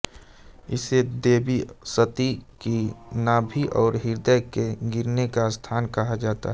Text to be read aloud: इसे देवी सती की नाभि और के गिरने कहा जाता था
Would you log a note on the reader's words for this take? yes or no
yes